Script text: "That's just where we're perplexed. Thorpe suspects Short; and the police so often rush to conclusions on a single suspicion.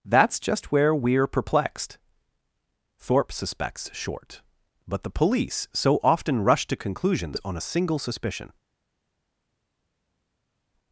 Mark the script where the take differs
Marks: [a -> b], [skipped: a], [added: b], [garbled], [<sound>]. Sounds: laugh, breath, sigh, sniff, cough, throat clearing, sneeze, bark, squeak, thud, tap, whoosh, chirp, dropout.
"That's just where we're perplexed. Thorpe suspects Short; [and -> but] the police so often rush to conclusions on a single suspicion.